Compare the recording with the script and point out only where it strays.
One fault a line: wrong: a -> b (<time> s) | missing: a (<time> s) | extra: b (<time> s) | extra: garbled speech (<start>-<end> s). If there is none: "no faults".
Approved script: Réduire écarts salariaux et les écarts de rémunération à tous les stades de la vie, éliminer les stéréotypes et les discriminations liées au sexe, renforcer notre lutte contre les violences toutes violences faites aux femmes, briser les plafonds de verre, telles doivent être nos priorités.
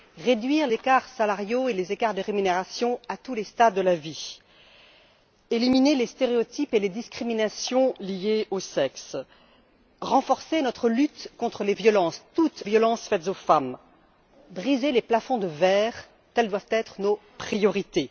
no faults